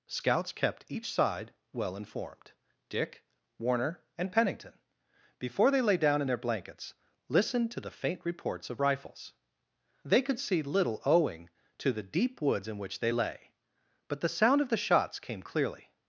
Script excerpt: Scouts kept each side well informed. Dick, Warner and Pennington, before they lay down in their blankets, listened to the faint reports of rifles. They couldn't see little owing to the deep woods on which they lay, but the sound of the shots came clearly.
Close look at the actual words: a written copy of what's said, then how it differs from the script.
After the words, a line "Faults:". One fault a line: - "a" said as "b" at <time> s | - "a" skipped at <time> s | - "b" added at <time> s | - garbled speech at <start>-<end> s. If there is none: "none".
Scouts kept each side well informed. Dick, Warner and Pennington, before they lay down in their blankets, listened to the faint reports of rifles. They could see little owing to the deep woods in which they lay, but the sound of the shots came clearly.
Faults:
- "couldn't" said as "could" at 10.2 s
- "on" said as "in" at 12.7 s